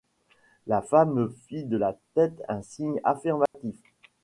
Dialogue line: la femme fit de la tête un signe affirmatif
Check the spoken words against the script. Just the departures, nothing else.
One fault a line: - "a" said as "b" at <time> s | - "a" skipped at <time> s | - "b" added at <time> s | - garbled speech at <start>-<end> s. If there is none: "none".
none